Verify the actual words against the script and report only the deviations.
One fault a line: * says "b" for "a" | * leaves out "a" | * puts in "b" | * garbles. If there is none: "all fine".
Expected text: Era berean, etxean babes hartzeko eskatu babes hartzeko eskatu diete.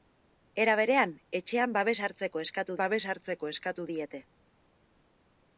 all fine